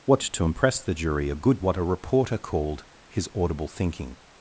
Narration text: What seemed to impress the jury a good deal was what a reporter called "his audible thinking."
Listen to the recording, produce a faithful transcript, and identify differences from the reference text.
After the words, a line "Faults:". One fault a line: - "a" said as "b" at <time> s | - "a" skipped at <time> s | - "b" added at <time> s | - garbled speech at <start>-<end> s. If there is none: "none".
What to impress the jury a good what a reporter called "his audible thinking."
Faults:
- "seemed" skipped at 0.2 s
- "deal was" skipped at 1.6 s